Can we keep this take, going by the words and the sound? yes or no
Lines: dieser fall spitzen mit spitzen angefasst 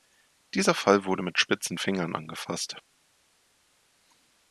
no